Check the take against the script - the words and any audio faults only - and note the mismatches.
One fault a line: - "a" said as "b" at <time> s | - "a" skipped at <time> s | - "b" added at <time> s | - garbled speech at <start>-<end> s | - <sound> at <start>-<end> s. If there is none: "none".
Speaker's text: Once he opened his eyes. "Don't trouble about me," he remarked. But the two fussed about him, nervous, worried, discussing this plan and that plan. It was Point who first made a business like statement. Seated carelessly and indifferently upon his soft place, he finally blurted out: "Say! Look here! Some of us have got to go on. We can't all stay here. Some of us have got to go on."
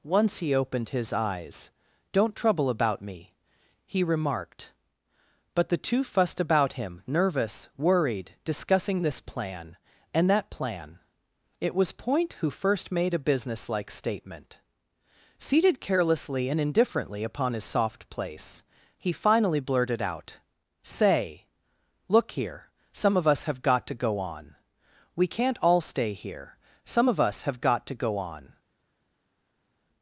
none